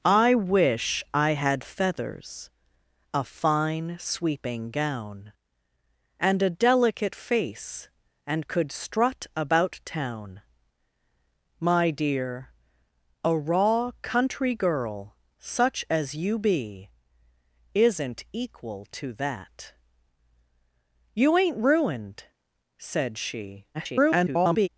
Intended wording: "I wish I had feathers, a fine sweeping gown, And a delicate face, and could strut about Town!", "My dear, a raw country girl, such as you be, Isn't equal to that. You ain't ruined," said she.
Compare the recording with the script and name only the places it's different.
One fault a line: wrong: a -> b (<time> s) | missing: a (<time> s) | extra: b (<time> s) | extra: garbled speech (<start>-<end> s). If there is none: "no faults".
extra: garbled speech (23.7-24.7 s)